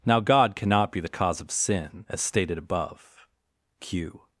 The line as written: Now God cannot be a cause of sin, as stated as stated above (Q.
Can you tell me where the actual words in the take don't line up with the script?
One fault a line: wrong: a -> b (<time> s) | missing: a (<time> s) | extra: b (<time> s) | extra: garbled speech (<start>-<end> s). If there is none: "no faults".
wrong: a -> the (1.0 s)
missing: as stated (2.6 s)